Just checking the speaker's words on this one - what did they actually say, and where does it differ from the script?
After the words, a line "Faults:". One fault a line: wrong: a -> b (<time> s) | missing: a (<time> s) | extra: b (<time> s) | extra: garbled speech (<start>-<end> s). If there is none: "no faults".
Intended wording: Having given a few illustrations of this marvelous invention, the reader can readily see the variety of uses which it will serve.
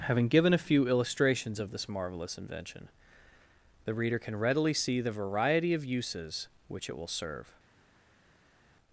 Having given a few illustrations of this marvelous invention, the reader can readily see the variety of uses which it will serve.
Faults:
no faults